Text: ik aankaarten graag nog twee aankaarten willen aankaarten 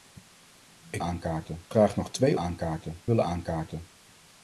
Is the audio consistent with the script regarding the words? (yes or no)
yes